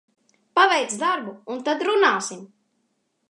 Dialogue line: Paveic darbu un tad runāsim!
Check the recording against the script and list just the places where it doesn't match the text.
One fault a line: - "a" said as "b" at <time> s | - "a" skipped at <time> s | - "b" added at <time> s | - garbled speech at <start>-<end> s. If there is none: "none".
none